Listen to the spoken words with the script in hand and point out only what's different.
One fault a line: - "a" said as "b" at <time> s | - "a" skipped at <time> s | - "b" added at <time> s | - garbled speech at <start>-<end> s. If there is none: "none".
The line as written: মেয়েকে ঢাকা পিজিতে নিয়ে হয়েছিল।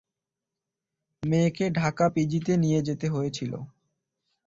- "যেতে" added at 2.8 s